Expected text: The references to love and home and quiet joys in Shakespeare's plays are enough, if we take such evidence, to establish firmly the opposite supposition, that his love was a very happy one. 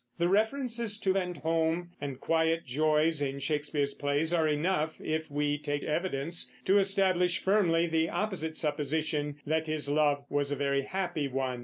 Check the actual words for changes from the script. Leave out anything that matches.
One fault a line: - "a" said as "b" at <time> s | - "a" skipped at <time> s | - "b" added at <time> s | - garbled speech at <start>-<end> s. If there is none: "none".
- "love" skipped at 1.1 s
- "such" skipped at 5.8 s